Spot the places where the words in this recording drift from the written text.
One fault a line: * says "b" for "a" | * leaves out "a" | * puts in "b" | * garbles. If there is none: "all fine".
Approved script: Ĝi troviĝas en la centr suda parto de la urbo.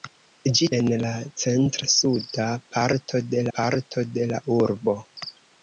* leaves out "troviĝas"
* puts in "parto de"